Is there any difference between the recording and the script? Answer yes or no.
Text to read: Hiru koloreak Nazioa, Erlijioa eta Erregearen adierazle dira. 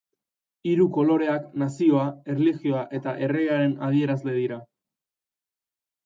no